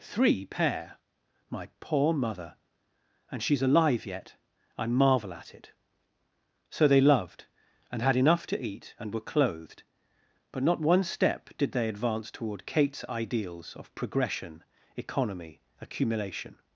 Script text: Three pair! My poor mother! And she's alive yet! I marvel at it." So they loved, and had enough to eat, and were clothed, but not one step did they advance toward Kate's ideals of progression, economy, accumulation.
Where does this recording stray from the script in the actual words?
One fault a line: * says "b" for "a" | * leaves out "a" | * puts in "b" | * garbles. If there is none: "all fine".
all fine